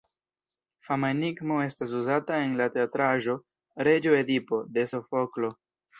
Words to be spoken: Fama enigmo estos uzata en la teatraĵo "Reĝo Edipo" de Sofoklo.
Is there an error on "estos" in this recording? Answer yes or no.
yes